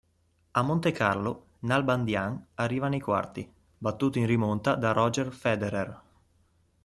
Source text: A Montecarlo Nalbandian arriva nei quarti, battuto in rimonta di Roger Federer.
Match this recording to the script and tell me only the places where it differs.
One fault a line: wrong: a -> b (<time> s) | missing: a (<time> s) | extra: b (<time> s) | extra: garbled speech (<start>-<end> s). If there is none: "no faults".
wrong: di -> da (4.7 s)